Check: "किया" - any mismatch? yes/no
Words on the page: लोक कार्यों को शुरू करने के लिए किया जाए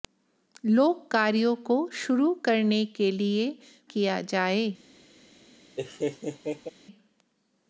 no